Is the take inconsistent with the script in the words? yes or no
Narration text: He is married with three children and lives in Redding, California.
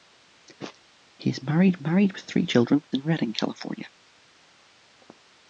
yes